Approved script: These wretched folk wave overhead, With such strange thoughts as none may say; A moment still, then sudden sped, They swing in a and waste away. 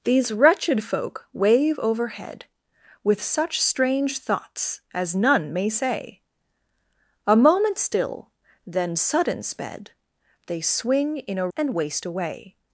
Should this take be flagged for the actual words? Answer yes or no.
no